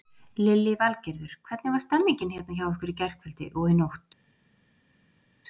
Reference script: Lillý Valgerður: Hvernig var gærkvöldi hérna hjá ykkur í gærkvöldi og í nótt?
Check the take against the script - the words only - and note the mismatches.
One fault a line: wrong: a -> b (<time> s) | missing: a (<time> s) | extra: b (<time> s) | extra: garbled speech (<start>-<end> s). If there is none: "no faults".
wrong: gærkvöldi -> stemmingin (1.9 s)